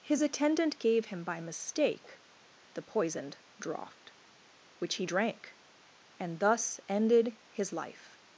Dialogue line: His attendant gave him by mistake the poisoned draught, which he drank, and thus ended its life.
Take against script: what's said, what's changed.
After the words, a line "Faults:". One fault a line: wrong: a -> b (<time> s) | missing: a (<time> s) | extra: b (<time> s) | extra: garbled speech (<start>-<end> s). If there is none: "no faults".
His attendant gave him by mistake the poisoned draught, which he drank, and thus ended his life.
Faults:
wrong: its -> his (7.5 s)